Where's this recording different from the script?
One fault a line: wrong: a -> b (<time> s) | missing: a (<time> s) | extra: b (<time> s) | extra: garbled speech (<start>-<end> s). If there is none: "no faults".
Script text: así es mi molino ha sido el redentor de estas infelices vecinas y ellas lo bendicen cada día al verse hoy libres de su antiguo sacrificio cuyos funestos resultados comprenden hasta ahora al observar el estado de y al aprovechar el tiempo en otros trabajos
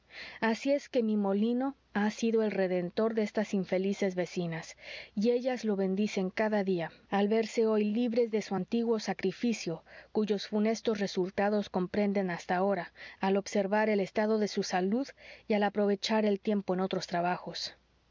extra: que (0.9 s)
extra: su salud (14.5 s)